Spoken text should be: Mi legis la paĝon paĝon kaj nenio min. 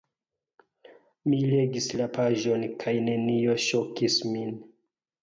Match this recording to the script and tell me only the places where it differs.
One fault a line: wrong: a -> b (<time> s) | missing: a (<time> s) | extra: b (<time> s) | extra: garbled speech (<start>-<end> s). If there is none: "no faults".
missing: paĝon (2.7 s)
extra: ŝokis (3.7 s)